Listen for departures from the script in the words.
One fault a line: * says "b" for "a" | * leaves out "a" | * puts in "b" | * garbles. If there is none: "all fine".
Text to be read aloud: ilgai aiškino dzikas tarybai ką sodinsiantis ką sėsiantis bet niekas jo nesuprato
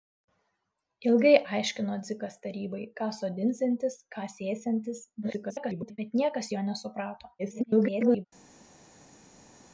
* garbles
* garbles